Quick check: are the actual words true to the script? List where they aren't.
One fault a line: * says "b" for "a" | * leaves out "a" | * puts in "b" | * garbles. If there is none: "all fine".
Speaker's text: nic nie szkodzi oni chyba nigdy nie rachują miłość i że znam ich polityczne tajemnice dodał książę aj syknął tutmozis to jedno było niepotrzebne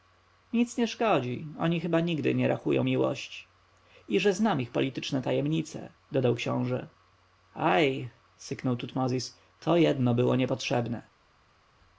all fine